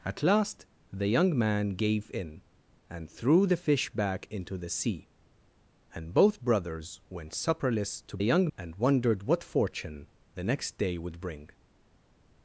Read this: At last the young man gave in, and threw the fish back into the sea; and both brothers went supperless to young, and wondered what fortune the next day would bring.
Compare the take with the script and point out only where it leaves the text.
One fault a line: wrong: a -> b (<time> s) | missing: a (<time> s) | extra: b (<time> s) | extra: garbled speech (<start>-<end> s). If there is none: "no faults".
no faults